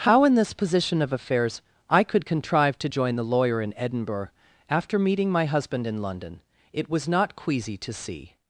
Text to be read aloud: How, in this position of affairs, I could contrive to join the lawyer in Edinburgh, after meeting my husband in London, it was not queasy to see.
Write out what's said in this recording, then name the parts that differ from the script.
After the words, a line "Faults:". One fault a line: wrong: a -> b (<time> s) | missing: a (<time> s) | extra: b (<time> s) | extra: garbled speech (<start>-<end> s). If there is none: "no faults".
How, in this position of affairs, I could contrive to join the lawyer in Edinburgh, after meeting my husband in London, it was not queasy to see.
Faults:
no faults